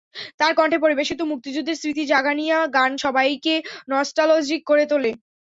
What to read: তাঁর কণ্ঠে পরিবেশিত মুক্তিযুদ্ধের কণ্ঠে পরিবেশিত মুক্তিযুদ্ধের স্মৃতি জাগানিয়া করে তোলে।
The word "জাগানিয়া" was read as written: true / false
false